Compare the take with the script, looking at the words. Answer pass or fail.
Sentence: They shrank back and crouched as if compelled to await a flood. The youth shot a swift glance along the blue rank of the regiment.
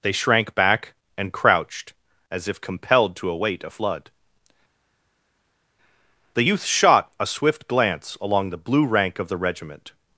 pass